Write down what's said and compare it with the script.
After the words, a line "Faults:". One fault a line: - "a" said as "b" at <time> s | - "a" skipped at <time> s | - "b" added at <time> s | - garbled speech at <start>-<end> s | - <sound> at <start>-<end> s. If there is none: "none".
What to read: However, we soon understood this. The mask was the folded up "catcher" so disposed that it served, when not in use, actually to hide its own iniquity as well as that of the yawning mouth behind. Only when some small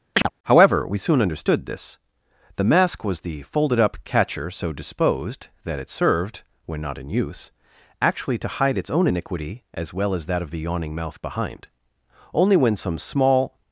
However, we soon understood this. The mask was the folded up "catcher" so disposed that it served, when not in use, actually to hide its own iniquity as well as that of the yawning mouth behind. Only when some small
Faults:
- chirp at 0.1-0.3 s